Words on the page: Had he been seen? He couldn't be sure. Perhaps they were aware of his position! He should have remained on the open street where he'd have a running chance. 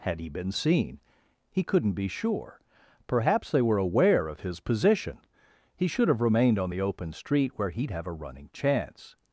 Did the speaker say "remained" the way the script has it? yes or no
yes